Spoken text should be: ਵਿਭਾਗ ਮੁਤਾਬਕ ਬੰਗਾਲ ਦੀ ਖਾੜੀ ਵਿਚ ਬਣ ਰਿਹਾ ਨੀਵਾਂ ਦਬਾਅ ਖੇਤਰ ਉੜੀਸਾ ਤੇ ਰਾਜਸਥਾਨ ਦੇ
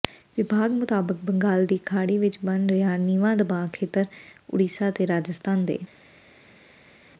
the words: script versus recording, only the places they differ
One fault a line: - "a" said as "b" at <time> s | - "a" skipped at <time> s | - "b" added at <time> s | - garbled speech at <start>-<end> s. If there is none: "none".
none